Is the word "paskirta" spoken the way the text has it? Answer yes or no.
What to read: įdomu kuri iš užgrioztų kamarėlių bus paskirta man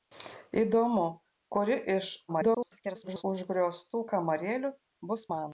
no